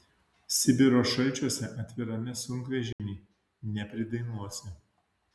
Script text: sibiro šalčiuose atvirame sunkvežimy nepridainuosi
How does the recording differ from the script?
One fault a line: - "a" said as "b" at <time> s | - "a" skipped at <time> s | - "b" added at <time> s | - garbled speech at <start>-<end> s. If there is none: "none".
none